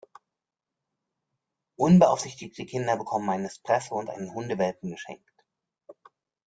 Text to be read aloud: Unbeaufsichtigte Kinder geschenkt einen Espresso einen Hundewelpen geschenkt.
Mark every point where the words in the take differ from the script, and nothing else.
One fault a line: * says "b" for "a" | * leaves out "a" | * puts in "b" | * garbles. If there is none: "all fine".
* says "bekommen" for "geschenkt"
* puts in "und"